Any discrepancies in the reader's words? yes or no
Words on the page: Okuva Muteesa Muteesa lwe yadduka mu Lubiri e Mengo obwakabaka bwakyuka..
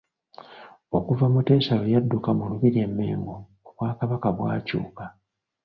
yes